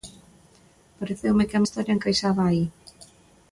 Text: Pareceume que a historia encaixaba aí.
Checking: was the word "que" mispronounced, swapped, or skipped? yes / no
no